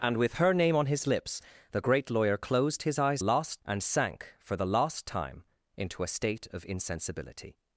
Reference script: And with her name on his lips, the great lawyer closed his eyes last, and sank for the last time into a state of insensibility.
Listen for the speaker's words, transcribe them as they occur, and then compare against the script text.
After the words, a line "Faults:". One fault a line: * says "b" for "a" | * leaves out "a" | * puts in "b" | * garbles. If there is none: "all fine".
And with her name on his lips, the great lawyer closed his eyes last, and sank for the last time into a state of insensibility.
Faults:
all fine